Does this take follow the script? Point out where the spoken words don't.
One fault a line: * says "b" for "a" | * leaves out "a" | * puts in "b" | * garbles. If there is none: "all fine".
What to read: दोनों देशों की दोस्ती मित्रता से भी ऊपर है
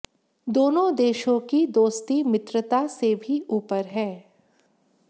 all fine